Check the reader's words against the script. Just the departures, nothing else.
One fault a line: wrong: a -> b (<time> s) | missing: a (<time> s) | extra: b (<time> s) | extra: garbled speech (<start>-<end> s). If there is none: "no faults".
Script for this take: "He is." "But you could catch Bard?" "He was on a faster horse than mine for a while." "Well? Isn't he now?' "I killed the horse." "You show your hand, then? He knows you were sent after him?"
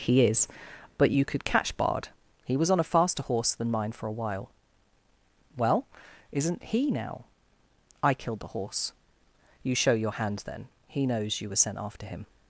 no faults